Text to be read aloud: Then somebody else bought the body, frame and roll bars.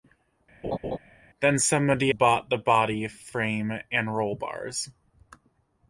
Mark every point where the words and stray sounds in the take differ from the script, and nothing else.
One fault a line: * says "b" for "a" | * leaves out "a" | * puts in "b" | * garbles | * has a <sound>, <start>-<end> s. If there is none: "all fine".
* has a laugh, 0.6-1.0 s
* leaves out "else"